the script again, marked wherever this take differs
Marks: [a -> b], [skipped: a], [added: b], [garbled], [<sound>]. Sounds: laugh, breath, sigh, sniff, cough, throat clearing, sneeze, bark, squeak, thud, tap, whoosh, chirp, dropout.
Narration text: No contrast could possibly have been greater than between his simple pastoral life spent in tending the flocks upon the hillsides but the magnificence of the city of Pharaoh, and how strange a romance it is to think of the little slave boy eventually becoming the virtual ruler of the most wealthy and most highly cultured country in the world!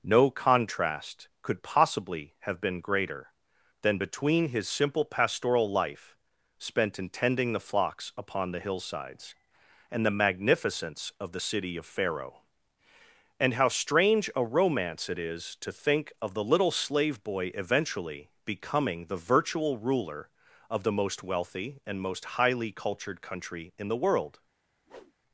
No contrast could possibly have been greater than between his simple pastoral life spent in tending the flocks upon the hillsides [but -> and] the magnificence of the city of Pharaoh, and how strange a romance it is to think of the little slave boy eventually becoming the virtual ruler of the most wealthy and most highly cultured country in the world! [whoosh]